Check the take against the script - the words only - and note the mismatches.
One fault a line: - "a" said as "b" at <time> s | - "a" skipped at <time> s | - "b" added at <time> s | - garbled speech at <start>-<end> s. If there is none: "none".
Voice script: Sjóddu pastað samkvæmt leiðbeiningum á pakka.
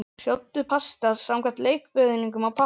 none